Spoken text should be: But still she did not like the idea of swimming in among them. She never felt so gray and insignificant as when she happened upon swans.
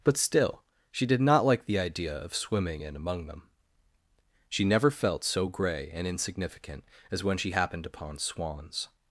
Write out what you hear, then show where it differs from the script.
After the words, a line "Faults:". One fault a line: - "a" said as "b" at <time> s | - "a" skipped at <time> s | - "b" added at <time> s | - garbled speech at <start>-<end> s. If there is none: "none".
But still she did not like the idea of swimming in among them. She never felt so gray and insignificant as when she happened upon swans.
Faults:
none